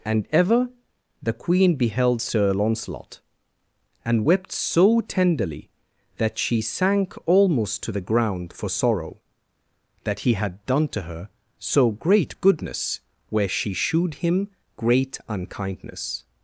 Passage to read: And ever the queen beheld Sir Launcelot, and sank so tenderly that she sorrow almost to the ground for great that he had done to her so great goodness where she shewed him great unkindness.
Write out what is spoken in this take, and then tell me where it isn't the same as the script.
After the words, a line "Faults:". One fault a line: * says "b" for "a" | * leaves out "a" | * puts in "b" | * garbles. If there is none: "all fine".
And ever the queen beheld Sir Launcelot, and wept so tenderly that she sank almost to the ground for sorrow that he had done to her so great goodness where she shewed him great unkindness.
Faults:
* says "wept" for "sank"
* says "sank" for "sorrow"
* says "sorrow" for "great"